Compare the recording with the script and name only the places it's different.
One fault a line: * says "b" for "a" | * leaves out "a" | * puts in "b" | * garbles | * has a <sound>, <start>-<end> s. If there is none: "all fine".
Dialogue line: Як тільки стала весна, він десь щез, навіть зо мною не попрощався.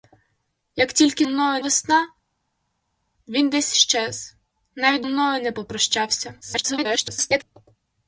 * says "мною" for "стала"
* leaves out "зо"
* garbles